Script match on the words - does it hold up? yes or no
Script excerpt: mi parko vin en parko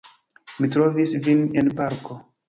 no